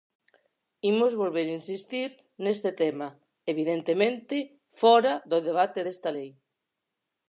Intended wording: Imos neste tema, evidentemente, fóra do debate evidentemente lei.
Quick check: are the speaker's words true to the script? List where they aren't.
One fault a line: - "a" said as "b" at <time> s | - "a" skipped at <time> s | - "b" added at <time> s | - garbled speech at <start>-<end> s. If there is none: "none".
- "volver insistir" added at 1.2 s
- "evidentemente" said as "desta" at 5.8 s